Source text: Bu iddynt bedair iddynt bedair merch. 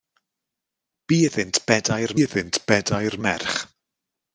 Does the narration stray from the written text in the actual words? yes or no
no